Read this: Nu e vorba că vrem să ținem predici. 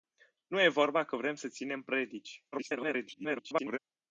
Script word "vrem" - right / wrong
right